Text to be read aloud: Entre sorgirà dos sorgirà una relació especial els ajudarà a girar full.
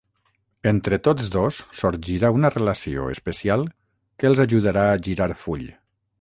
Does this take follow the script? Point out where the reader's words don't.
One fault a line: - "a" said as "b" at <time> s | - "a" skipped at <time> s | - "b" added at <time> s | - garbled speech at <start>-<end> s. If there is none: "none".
- "sorgirà" said as "tots" at 1.1 s
- "que" added at 4.2 s